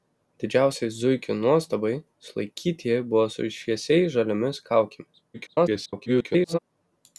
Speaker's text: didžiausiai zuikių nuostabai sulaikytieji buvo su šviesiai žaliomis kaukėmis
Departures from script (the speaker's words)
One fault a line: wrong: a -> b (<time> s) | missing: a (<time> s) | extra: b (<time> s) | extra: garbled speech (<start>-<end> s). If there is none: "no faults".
extra: garbled speech (5.3-6.6 s)